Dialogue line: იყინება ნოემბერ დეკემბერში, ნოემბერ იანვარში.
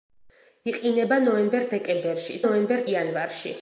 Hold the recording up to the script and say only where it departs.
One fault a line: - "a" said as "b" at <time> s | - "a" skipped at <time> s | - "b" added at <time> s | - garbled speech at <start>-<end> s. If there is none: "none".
none